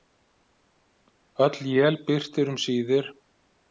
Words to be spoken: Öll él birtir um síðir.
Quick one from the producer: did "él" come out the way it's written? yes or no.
yes